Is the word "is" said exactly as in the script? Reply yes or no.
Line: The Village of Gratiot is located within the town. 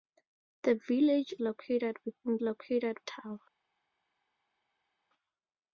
no